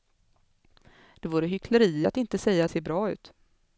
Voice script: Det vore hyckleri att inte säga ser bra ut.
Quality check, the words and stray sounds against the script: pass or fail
pass